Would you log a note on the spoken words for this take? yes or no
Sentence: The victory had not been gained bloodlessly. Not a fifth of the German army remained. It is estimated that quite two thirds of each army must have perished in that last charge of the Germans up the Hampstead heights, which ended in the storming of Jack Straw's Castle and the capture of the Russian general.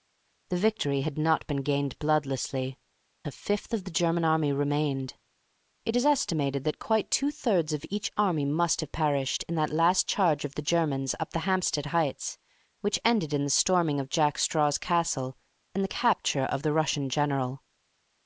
yes